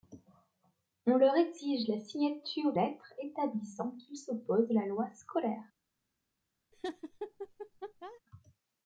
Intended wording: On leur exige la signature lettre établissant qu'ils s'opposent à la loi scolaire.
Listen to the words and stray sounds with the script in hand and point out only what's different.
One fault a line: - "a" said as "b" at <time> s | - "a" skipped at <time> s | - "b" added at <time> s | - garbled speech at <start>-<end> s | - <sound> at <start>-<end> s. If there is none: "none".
- laugh at 6.7-8.2 s